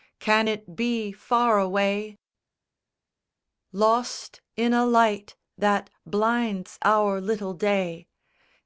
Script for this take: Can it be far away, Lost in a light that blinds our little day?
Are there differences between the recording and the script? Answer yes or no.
no